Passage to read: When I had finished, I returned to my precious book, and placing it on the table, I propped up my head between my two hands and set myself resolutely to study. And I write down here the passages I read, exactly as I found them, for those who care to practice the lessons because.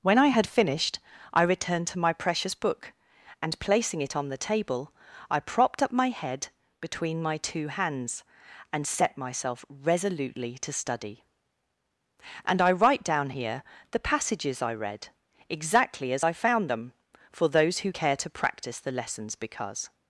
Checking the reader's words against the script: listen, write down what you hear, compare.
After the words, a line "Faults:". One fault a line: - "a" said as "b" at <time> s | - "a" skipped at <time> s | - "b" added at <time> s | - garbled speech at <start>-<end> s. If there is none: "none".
When I had finished, I returned to my precious book, and placing it on the table, I propped up my head between my two hands and set myself resolutely to study. And I write down here the passages I read, exactly as I found them, for those who care to practice the lessons because.
Faults:
none